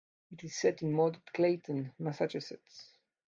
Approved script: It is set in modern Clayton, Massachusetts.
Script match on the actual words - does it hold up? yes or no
yes